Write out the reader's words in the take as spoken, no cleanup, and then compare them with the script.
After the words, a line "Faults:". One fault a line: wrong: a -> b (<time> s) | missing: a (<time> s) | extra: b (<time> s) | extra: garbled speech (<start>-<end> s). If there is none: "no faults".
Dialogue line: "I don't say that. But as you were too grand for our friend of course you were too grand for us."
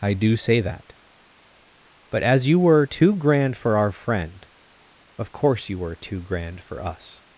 "I do say that. But as you were too grand for our friend of course you were too grand for us."
Faults:
wrong: don't -> do (0.1 s)